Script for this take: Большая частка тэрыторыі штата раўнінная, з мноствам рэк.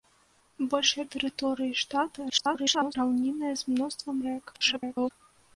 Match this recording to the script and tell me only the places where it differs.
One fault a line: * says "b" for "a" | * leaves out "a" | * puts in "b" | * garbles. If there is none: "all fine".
* leaves out "частка"
* garbles
* garbles